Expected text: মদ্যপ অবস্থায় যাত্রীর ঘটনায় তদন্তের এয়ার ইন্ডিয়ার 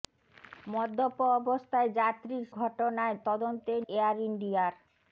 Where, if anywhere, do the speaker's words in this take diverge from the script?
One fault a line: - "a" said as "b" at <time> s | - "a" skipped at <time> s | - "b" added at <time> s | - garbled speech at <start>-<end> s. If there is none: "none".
none